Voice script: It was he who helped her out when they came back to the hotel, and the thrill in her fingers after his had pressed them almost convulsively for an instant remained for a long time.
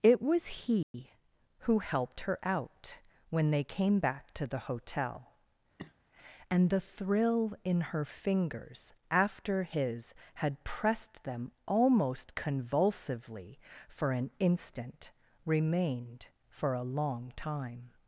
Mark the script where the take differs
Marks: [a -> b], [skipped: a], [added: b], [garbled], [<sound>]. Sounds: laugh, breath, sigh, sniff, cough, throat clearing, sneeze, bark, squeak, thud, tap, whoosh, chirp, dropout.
It was he [dropout] who helped her out when they came back to the hotel, [cough] and the thrill in her fingers after his had pressed them almost convulsively for an instant remained for a long time.